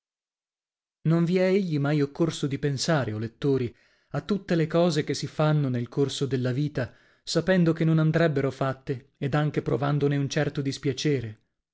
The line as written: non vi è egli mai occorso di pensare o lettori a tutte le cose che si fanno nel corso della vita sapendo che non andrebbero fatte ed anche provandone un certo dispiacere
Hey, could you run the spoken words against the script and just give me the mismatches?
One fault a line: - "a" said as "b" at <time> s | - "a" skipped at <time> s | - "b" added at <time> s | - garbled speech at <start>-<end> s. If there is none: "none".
none